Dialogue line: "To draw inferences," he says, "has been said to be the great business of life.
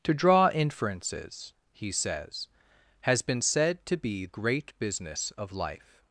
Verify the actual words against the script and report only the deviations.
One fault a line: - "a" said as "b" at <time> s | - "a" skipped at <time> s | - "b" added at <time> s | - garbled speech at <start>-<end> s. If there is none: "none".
- "the" skipped at 4.2 s